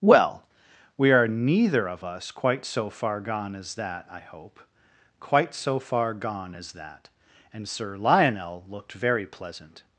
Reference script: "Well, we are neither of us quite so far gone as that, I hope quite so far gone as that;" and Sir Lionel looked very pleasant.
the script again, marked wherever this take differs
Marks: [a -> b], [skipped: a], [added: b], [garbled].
"Well, we are neither of us quite so far gone as that, I hope quite so far gone as that;" and Sir Lionel looked very pleasant.